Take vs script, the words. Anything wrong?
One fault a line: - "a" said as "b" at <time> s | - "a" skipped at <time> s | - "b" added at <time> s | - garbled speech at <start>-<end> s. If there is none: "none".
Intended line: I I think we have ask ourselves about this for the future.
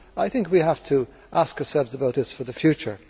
- "I" skipped at 0.3 s
- "to" added at 0.8 s